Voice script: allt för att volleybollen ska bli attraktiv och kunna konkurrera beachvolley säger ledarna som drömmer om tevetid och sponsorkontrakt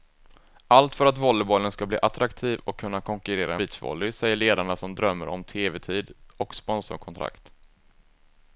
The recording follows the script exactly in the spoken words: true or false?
true